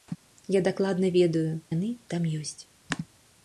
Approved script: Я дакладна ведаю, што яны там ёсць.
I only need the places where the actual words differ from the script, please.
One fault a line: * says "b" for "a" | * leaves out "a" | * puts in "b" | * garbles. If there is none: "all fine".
* leaves out "што"